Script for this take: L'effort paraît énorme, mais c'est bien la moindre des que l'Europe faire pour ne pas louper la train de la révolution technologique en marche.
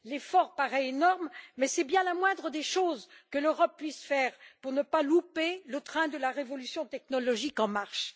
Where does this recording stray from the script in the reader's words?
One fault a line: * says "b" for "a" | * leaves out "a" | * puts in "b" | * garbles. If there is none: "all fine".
* puts in "choses"
* puts in "puisse"
* says "le" for "la"